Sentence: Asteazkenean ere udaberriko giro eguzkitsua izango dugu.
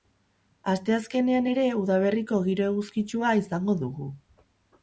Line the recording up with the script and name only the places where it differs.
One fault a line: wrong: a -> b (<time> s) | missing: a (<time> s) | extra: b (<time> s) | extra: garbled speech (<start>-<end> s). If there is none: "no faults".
no faults